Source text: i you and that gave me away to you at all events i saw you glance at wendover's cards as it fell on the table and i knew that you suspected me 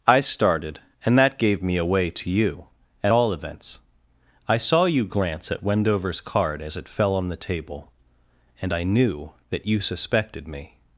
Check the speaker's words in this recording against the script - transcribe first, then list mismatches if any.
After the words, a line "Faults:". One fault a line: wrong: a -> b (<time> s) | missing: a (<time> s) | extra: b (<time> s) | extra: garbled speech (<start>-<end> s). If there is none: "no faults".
i started and that gave me away to you at all events i saw you glance at wendover's card as it fell on the table and i knew that you suspected me
Faults:
wrong: you -> started (0.2 s)
wrong: cards -> card (6.2 s)